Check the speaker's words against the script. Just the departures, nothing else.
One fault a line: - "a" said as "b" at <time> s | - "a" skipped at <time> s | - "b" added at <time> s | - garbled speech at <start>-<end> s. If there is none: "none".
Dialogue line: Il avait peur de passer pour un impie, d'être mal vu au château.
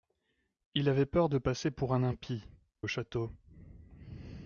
- "d'être mal vu" skipped at 2.5 s